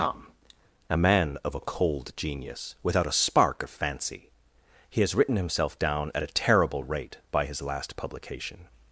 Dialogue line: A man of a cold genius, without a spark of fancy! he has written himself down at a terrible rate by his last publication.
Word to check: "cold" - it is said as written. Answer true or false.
true